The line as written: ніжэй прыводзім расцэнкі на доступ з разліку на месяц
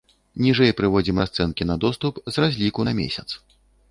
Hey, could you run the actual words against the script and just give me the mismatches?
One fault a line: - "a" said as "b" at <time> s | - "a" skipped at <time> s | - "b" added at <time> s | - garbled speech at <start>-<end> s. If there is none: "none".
none